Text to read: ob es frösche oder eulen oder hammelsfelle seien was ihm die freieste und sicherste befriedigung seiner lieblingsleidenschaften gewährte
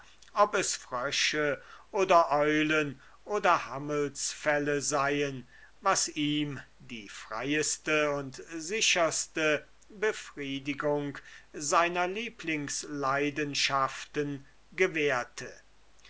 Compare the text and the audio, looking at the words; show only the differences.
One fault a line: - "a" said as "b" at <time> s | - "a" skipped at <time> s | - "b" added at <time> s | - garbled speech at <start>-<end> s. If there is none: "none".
none